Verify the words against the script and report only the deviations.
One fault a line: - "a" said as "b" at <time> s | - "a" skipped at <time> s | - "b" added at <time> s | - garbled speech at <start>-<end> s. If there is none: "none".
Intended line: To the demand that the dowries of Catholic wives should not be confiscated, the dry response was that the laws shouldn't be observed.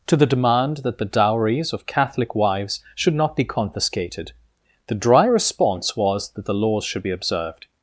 - "shouldn't" said as "should" at 6.8 s